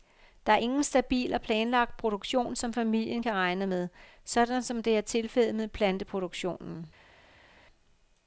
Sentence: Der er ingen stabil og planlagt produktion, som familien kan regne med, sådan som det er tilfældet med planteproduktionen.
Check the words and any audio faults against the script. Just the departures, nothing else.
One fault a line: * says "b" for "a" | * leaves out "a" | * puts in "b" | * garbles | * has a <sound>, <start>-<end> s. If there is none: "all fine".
all fine